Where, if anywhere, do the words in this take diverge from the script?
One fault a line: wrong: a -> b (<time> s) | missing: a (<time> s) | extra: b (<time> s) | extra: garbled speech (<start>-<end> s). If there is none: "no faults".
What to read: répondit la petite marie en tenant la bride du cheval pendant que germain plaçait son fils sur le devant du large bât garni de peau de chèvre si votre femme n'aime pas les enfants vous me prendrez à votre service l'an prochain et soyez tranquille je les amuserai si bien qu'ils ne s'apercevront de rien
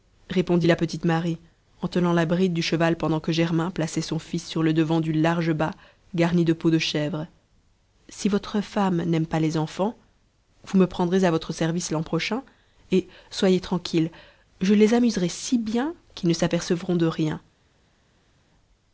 no faults